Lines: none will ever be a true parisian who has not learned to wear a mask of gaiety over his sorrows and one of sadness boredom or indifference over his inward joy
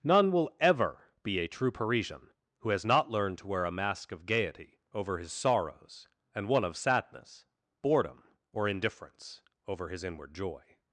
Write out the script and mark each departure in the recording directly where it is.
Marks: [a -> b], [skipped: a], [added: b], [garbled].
none will ever be a true parisian who has not learned to wear a mask of gaiety over his sorrows and one of sadness boredom or indifference over his inward joy